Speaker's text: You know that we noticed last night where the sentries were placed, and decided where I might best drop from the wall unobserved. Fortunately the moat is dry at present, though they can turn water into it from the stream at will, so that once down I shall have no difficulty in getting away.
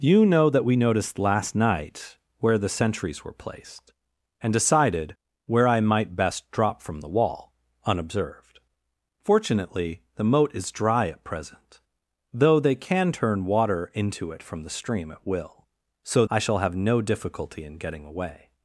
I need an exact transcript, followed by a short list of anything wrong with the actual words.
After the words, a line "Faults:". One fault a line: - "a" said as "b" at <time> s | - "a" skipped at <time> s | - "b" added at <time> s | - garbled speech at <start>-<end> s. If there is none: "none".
You know that we noticed last night where the sentries were placed, and decided where I might best drop from the wall unobserved. Fortunately the moat is dry at present, though they can turn water into it from the stream at will, so I shall have no difficulty in getting away.
Faults:
- "that once down" skipped at 16.2 s